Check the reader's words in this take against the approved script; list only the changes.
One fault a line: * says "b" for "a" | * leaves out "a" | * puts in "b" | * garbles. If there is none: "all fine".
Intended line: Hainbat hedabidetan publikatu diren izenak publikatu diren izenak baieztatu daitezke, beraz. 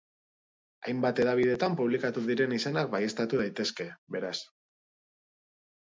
* leaves out "publikatu diren izenak"